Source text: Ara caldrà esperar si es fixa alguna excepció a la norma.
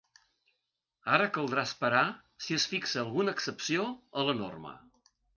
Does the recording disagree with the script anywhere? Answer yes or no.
no